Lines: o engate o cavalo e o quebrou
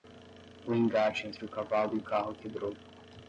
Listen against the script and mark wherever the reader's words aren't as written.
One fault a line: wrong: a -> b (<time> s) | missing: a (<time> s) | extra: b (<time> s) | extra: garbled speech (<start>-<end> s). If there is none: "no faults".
extra: entre (1.3 s)
extra: carro (2.0 s)